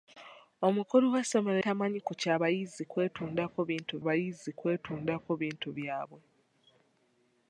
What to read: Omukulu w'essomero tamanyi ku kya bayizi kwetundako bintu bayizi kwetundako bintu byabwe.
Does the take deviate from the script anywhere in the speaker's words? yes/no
no